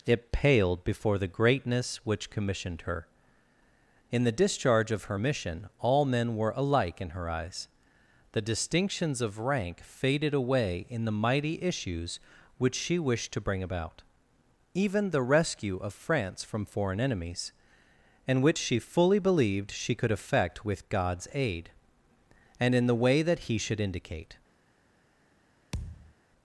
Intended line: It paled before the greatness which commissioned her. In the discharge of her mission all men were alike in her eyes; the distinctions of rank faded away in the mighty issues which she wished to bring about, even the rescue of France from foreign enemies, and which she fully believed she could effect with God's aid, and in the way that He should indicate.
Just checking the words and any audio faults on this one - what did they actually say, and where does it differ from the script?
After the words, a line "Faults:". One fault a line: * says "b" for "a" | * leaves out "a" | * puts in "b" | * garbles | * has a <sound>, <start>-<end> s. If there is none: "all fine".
It paled before the greatness which commissioned her. In the discharge of her mission all men were alike in her eyes; the distinctions of rank faded away in the mighty issues which she wished to bring about, even the rescue of France from foreign enemies, and which she fully believed she could effect with God's aid, and in the way that He should indicate.
Faults:
* has a thud, 25.7-26.1 s